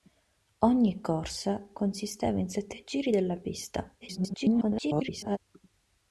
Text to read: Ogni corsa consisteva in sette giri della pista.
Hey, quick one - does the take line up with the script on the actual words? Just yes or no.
no